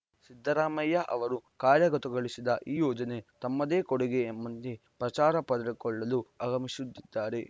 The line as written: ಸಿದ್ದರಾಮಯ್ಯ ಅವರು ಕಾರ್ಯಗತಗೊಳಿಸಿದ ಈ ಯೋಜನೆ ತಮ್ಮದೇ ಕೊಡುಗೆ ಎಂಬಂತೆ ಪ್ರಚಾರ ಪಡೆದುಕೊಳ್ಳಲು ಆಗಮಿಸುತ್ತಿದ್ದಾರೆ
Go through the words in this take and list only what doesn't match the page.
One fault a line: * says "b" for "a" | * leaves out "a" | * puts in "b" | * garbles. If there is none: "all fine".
all fine